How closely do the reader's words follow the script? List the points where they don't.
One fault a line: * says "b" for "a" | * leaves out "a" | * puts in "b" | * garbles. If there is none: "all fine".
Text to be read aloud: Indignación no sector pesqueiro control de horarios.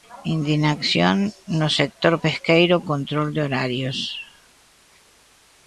all fine